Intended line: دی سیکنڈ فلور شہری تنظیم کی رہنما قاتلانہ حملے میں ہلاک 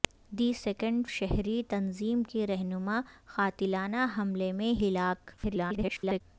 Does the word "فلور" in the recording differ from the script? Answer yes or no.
yes